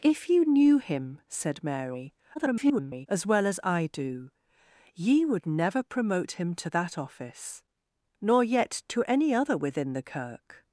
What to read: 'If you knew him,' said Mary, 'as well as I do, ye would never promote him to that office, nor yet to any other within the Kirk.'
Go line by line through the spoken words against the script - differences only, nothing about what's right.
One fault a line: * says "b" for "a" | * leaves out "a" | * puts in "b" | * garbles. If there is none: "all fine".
* garbles